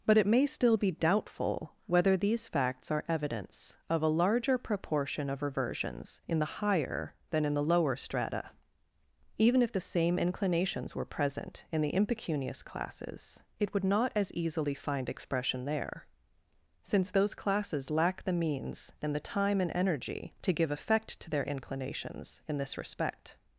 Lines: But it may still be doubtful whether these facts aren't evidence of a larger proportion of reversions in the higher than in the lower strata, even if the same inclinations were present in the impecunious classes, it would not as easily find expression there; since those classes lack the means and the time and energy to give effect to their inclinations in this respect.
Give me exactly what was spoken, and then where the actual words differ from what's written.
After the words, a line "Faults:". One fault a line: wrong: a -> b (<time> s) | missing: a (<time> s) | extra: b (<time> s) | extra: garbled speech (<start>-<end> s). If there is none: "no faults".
But it may still be doubtful whether these facts are evidence of a larger proportion of reversions in the higher than in the lower strata, even if the same inclinations were present in the impecunious classes, it would not as easily find expression there; since those classes lack the means and the time and energy to give effect to their inclinations in this respect.
Faults:
wrong: aren't -> are (2.9 s)